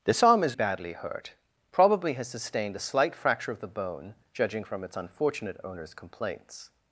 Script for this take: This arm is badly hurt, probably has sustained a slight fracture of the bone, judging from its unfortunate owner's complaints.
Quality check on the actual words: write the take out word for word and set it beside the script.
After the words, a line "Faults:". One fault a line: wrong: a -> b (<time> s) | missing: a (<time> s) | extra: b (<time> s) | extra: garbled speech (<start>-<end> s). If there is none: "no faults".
This arm is badly hurt, probably has sustained a slight fracture of the bone, judging from its unfortunate owner's complaints.
Faults:
no faults